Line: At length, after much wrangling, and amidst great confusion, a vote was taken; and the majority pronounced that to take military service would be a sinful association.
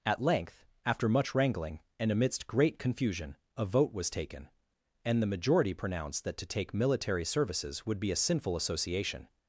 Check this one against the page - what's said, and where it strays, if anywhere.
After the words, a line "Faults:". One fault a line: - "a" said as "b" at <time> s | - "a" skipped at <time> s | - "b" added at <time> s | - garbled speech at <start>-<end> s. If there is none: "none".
At length, after much wrangling, and amidst great confusion, a vote was taken; and the majority pronounced that to take military services would be a sinful association.
Faults:
- "service" said as "services" at 7.2 s